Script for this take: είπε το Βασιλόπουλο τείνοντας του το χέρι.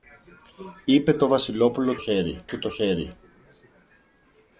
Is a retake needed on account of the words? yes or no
yes